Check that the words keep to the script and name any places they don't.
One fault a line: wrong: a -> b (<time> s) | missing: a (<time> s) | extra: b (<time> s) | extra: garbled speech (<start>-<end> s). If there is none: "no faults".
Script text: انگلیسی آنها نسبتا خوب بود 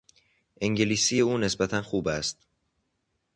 wrong: آنها -> او (1.2 s)
wrong: بود -> است (2.1 s)